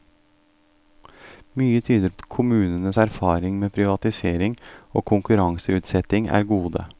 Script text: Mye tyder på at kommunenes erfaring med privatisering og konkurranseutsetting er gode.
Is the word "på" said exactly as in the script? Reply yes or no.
no